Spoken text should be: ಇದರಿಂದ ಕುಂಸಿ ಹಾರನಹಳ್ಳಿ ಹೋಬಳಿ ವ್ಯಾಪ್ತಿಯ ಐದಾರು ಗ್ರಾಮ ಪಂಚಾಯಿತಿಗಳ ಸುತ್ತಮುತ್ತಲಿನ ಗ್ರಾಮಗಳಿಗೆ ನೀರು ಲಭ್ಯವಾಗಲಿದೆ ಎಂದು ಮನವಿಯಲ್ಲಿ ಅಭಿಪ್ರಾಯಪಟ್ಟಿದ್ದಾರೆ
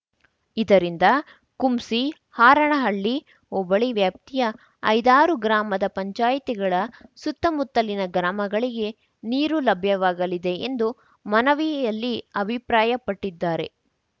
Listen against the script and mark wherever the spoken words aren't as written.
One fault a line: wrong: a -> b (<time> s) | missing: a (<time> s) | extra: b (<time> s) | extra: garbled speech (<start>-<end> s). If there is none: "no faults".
no faults